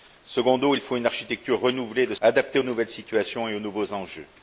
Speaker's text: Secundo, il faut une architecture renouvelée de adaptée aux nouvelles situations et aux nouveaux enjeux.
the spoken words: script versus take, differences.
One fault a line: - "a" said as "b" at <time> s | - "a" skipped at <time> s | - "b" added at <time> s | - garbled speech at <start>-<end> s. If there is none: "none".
none